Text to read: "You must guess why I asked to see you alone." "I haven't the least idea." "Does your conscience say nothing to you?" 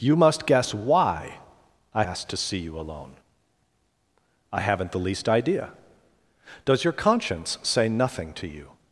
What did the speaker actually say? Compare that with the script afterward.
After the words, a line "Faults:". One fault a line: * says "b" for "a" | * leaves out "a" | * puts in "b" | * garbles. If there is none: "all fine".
"You must guess why I asked to see you alone." "I haven't the least idea." "Does your conscience say nothing to you?"
Faults:
all fine